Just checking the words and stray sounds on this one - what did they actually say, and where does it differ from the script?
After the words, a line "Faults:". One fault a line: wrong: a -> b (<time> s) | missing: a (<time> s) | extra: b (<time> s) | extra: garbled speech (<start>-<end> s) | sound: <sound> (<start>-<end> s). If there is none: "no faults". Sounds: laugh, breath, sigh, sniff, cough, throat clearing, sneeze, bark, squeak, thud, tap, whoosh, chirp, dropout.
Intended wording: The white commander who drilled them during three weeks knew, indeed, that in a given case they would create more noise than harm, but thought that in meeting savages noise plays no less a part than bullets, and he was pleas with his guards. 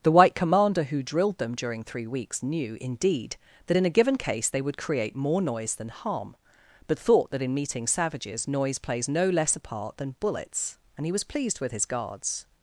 The white commander who drilled them during three weeks knew, indeed, that in a given case they would create more noise than harm, but thought that in meeting savages noise plays no less a part than bullets, and he was pleased with his guards.
Faults:
wrong: pleas -> pleased (11.2 s)